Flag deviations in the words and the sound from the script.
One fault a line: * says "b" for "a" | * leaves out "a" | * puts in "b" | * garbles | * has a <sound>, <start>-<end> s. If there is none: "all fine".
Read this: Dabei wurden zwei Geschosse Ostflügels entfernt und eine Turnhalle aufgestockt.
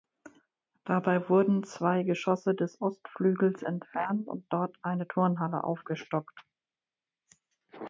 * puts in "des"
* puts in "dort"